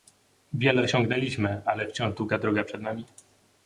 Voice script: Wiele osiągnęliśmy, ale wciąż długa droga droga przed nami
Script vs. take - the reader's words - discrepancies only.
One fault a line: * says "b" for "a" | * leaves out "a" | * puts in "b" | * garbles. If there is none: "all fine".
* leaves out "droga"